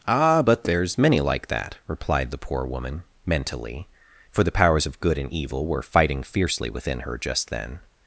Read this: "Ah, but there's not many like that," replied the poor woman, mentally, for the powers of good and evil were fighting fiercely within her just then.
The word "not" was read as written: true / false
false